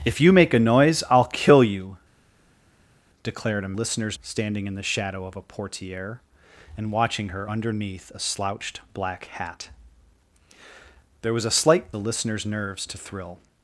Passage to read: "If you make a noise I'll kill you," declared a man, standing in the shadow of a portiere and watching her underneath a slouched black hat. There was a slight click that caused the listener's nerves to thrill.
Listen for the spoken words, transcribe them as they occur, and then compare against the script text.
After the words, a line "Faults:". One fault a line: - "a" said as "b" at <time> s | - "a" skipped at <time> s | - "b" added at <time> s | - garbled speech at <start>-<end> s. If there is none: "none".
"If you make a noise I'll kill you," declared a listener's, standing in the shadow of a portiere and watching her underneath a slouched black hat. There was a slight the listener's nerves to thrill.
Faults:
- "man" said as "listener's" at 3.7 s
- "click that caused" skipped at 11.9 s